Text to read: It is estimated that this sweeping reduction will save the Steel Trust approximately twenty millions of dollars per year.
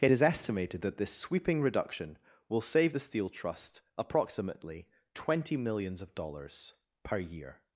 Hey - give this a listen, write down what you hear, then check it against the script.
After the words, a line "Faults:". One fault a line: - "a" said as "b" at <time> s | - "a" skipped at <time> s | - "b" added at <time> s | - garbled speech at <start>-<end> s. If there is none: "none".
It is estimated that this sweeping reduction will save the Steel Trust approximately twenty millions of dollars per year.
Faults:
none